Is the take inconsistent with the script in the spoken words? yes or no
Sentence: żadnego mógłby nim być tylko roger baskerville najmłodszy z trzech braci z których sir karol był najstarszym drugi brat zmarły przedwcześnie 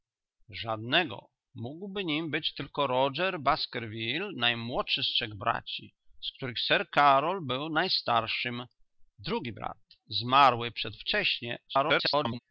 yes